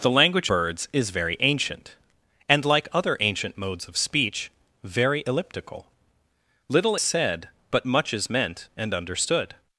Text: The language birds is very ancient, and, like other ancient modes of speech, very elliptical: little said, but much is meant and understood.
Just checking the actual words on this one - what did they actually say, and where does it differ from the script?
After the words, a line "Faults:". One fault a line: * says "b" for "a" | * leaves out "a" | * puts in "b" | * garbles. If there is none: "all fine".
The language birds is very ancient, and, like other ancient modes of speech, very elliptical: little said, but much is meant and understood.
Faults:
all fine